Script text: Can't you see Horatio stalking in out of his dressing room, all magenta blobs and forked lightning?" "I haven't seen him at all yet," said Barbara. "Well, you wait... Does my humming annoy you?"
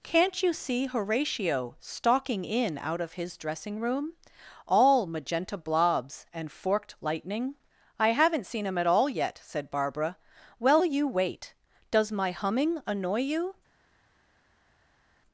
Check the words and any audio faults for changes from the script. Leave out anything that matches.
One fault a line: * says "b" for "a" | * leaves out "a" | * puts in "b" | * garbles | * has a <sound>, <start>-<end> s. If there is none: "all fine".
all fine